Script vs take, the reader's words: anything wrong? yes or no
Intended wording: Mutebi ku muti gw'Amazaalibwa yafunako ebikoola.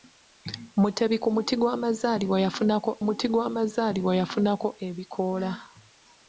yes